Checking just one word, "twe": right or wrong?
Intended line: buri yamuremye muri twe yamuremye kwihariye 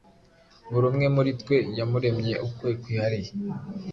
right